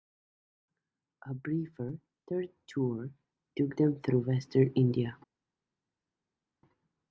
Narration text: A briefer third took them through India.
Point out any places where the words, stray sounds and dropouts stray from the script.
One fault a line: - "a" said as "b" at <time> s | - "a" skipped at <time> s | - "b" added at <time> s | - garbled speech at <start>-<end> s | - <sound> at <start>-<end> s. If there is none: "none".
- "tour" added at 2.7 s
- "western" added at 4.3 s